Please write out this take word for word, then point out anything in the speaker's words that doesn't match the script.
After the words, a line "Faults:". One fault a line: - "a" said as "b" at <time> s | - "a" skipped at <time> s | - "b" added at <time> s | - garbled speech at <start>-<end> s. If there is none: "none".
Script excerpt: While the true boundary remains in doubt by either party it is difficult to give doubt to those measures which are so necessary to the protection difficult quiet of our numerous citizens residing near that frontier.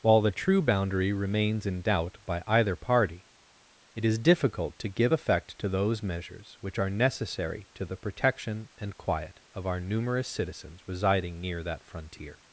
While the true boundary remains in doubt by either party it is difficult to give effect to those measures which are necessary to the protection and quiet of our numerous citizens residing near that frontier.
Faults:
- "doubt" said as "effect" at 5.1 s
- "so" skipped at 6.9 s
- "difficult" said as "and" at 8.8 s